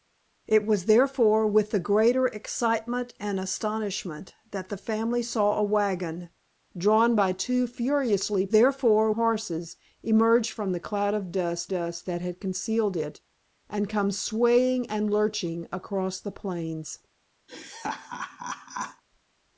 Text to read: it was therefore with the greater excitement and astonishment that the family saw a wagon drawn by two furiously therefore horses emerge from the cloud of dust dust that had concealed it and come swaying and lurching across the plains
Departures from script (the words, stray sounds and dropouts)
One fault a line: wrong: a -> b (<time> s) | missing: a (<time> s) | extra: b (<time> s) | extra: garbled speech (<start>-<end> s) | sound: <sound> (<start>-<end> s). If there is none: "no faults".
sound: laugh (17.5-19.0 s)